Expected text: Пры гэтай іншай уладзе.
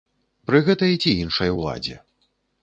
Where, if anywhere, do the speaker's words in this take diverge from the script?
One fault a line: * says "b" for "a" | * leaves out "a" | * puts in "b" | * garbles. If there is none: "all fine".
* puts in "ці"